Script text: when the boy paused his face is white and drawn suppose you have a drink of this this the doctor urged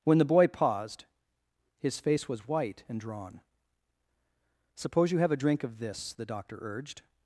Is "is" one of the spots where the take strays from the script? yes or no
yes